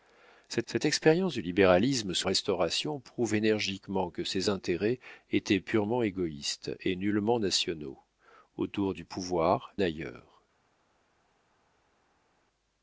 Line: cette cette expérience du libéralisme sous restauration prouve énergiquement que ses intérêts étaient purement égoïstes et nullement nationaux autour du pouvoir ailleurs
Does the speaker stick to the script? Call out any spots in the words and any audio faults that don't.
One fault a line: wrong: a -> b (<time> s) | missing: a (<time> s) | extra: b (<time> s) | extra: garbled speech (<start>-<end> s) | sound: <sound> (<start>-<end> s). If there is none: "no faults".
no faults